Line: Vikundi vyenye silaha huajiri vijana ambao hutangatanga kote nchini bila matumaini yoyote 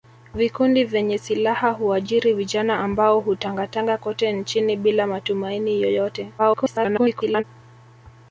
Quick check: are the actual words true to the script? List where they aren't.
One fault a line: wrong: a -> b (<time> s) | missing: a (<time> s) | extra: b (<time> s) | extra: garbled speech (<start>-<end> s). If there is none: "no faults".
extra: garbled speech (6.4-7.4 s)